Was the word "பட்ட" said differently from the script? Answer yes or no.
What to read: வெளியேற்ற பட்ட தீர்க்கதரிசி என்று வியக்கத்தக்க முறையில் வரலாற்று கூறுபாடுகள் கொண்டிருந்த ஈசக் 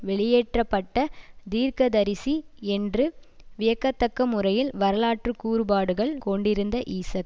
no